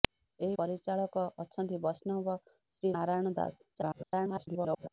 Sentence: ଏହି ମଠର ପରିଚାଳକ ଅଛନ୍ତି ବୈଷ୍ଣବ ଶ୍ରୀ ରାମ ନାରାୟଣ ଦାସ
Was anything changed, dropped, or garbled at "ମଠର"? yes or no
yes